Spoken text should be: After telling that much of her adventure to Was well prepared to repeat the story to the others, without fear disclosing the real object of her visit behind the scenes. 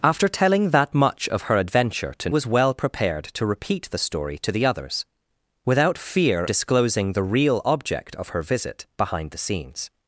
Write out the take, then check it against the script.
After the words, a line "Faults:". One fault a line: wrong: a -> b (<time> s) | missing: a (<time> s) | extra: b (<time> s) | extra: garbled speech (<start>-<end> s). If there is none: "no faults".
After telling that much of her adventure to Was well prepared to repeat the story to the others, without fear disclosing the real object of her visit behind the scenes.
Faults:
no faults